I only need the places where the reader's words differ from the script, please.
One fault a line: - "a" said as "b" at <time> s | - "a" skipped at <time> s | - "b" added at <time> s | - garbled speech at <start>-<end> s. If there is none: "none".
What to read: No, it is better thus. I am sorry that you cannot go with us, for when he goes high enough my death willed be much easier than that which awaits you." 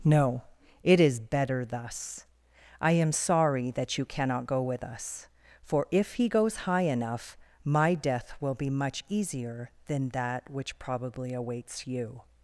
- "when" said as "if" at 5.9 s
- "willed" said as "will" at 8.4 s
- "probably" added at 10.8 s